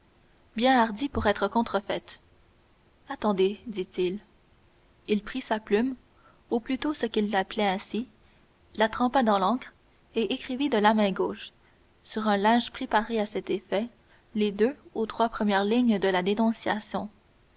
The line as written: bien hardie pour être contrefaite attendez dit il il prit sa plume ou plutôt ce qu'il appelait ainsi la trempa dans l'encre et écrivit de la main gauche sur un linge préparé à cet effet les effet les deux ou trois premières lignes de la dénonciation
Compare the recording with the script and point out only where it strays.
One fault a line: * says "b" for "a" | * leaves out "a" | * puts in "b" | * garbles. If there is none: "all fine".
* leaves out "effet les"